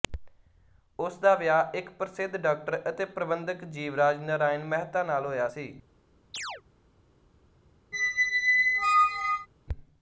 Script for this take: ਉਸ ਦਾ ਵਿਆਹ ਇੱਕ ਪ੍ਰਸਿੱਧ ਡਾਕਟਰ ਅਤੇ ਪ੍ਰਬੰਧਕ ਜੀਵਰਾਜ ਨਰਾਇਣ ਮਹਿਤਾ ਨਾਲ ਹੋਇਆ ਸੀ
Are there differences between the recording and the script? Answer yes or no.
no